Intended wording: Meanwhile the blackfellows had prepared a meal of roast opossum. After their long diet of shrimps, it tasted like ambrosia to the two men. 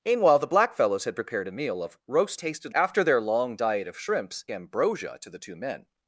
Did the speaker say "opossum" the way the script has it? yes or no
no